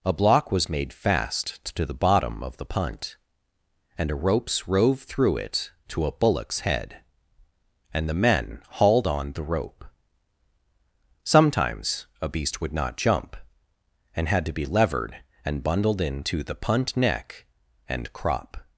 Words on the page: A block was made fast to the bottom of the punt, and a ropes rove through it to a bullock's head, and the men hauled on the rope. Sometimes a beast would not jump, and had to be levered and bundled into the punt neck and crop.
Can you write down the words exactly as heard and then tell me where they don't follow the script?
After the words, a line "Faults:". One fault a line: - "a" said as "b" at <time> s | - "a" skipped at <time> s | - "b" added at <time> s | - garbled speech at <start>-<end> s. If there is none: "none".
A block was made fast to the bottom of the punt, and a ropes rove through it to a bullock's head, and the men hauled on the rope. Sometimes a beast would not jump, and had to be levered and bundled into the punt neck and crop.
Faults:
none